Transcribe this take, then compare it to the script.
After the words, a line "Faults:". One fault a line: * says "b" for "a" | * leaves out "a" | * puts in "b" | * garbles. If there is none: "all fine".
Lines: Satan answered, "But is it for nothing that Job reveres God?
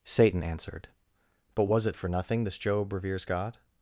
Satan answered, "But was it for nothing this Job reveres God?
Faults:
* says "was" for "is"
* says "this" for "that"